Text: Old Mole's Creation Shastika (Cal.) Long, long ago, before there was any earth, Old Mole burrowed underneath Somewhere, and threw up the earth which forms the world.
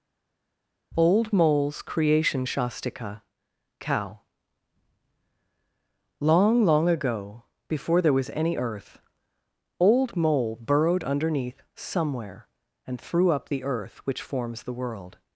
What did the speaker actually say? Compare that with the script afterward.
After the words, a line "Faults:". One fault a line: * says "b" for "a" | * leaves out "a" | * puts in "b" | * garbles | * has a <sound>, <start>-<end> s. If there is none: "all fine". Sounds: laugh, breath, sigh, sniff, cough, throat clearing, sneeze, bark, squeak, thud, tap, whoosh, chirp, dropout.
Old Mole's Creation Shastika (Cow.) Long, long ago, before there was any earth, Old Mole burrowed underneath Somewhere, and threw up the earth which forms the world.
Faults:
* says "Cow" for "Cal"